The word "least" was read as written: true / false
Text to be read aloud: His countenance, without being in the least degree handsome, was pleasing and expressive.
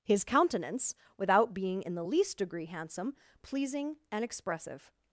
true